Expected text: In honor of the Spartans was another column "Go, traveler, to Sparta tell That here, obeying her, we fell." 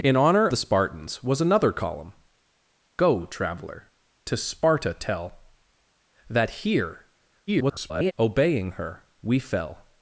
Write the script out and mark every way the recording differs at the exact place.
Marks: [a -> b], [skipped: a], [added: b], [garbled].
In honor [skipped: of] the Spartans was another column "Go, traveler, to Sparta tell That here, [garbled] obeying her, we fell."